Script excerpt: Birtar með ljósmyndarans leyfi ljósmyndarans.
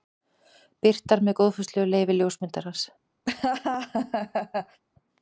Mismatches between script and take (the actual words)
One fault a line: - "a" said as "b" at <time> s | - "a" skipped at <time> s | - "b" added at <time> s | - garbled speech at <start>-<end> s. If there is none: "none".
- "ljósmyndarans" said as "góðfúslegu" at 1.4 s